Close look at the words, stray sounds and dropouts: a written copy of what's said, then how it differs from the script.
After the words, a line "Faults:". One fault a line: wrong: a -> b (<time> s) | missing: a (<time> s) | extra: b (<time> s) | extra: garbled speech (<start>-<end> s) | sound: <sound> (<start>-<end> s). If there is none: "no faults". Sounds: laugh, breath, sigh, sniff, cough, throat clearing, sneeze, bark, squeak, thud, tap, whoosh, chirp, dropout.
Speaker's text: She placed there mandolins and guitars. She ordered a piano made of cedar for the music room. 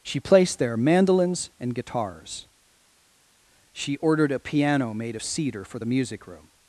She placed there mandolins and guitars. She ordered a piano made of cedar for the music room.
Faults:
no faults